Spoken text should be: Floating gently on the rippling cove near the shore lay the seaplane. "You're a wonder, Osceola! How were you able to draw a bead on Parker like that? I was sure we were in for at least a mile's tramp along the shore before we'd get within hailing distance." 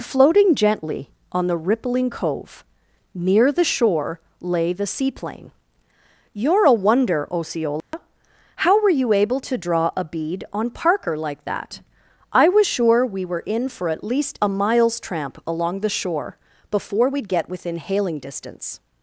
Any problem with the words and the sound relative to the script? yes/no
yes